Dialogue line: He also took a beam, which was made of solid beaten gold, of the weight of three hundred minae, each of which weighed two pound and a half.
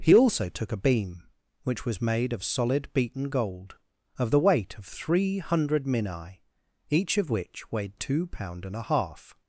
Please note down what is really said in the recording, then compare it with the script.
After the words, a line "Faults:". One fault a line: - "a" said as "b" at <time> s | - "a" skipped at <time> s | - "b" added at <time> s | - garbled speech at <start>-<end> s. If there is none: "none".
He also took a beam, which was made of solid beaten gold, of the weight of three hundred minae, each of which weighed two pound and a half.
Faults:
none